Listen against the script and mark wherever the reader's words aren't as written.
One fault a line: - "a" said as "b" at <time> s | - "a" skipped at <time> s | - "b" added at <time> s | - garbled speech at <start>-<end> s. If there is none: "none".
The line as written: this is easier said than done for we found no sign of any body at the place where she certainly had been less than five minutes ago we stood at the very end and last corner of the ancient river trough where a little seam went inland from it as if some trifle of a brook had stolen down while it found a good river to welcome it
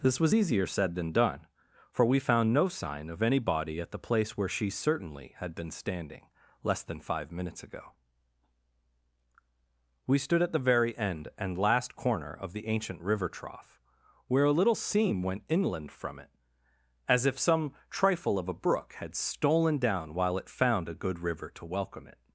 - "is" said as "was" at 0.2 s
- "standing" added at 5.7 s